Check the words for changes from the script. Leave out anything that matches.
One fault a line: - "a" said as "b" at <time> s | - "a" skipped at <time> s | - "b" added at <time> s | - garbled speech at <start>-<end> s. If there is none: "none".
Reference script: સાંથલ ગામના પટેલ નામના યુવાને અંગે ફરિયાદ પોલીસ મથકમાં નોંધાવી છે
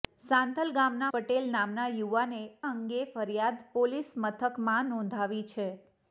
none